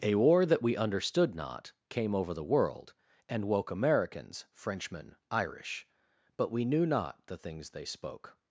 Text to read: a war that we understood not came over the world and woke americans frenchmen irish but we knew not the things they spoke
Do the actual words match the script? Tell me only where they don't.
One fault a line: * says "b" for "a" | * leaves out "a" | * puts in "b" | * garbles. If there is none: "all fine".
all fine